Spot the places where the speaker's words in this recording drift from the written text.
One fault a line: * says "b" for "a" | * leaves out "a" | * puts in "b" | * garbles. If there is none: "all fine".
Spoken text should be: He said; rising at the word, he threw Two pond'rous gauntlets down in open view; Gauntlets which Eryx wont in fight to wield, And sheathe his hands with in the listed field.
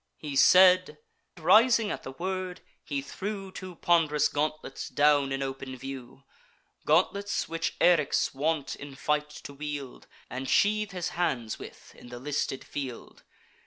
all fine